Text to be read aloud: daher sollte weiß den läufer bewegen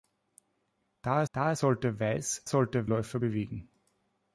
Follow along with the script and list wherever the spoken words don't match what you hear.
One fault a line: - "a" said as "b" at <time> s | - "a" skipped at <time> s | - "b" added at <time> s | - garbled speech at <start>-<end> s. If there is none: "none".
- "daher" added at 1.3 s
- "den" said as "sollte" at 2.5 s